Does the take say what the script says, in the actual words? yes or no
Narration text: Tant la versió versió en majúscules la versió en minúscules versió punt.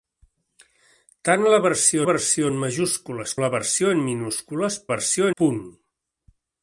yes